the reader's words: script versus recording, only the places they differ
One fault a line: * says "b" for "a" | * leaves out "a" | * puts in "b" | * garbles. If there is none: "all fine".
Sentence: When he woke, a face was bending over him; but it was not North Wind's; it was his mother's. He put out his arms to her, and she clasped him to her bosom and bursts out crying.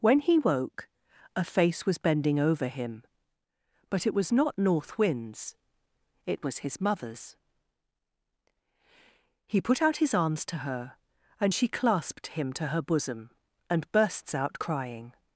all fine